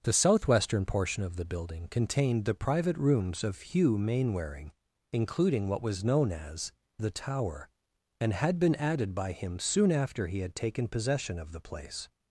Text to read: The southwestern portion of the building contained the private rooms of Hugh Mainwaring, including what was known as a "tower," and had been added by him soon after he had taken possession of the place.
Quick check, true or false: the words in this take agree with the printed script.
false